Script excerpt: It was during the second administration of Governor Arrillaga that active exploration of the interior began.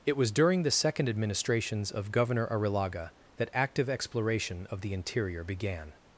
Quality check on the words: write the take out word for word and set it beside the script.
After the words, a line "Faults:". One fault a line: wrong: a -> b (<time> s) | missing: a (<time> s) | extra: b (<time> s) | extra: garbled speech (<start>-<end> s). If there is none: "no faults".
It was during the second administrations of Governor Arrillaga that active exploration of the interior began.
Faults:
wrong: administration -> administrations (1.1 s)